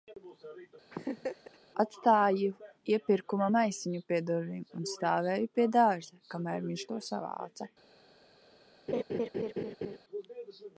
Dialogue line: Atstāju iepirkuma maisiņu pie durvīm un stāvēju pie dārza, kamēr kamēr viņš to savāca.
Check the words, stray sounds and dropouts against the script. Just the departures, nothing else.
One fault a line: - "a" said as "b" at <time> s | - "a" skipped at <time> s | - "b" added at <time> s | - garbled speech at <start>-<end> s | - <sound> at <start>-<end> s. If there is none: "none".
- laugh at 0.9-1.6 s
- "kamēr" skipped at 6.7 s
- laugh at 8.9-10.0 s